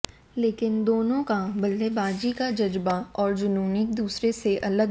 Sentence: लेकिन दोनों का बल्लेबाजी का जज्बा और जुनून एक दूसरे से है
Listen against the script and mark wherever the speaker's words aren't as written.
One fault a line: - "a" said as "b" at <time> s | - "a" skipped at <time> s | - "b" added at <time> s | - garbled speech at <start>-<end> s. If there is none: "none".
- "अलग" added at 4.6 s